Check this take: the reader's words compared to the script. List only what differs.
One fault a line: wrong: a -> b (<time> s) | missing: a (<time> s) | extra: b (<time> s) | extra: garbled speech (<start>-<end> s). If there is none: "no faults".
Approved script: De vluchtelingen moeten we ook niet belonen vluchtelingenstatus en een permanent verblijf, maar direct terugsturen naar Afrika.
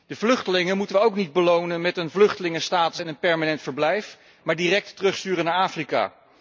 extra: met een (1.8 s)